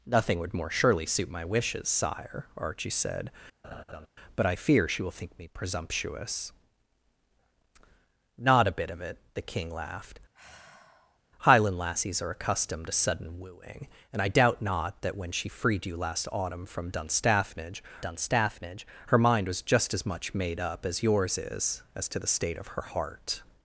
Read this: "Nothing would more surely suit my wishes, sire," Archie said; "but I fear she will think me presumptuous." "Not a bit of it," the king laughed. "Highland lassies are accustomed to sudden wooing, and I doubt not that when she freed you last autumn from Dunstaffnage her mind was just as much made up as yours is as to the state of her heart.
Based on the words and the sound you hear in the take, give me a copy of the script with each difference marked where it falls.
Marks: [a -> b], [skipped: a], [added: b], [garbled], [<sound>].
"Nothing would more surely suit my wishes, sire," Archie said; [laugh] "but I fear she will think me presumptuous." "Not a bit of it," the king laughed. [sigh] "Highland lassies are accustomed to sudden wooing, and I doubt not that when she freed you last autumn from Dunstaffnage [added: Dunstaffnage] her mind was just as much made up as yours is as to the state of her heart.